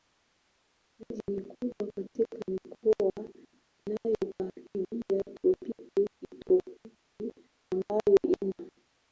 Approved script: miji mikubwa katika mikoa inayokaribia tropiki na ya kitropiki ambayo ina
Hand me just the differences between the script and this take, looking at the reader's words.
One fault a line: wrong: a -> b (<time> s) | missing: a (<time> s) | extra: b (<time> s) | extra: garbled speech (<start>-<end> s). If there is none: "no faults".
missing: na ya (6.1 s)